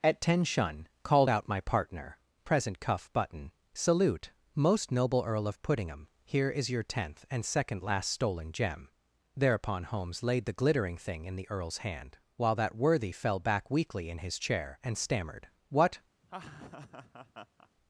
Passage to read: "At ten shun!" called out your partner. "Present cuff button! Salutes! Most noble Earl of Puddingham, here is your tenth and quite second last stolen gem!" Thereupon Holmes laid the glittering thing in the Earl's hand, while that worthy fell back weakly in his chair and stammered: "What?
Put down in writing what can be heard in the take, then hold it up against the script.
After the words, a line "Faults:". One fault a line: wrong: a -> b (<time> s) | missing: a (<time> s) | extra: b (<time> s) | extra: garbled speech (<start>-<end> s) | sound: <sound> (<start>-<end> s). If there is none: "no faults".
"At ten shun!" called out my partner. "Present cuff button! Salute! Most noble Earl of Puddingham, here is your tenth and second last stolen gem!" Thereupon Holmes laid the glittering thing in the Earl's hand, while that worthy fell back weakly in his chair and stammered: "What?
Faults:
wrong: your -> my (1.5 s)
wrong: Salutes -> Salute (3.7 s)
missing: quite (7.4 s)
sound: laugh (16.2-17.7 s)